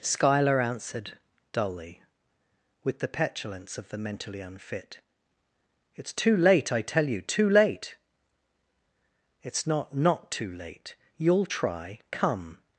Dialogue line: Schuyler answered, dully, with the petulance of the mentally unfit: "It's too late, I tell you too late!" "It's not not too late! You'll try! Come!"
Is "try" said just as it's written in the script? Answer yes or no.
yes